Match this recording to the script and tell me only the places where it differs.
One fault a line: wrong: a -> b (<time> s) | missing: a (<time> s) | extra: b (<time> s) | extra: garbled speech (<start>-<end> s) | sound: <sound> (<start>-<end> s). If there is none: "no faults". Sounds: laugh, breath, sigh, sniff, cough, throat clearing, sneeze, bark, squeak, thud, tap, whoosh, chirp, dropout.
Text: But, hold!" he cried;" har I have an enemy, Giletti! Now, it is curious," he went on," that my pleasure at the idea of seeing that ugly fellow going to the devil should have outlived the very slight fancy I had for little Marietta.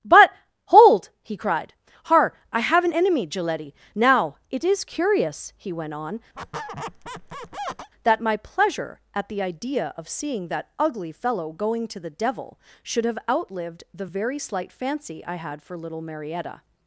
sound: squeak (6.3-7.9 s)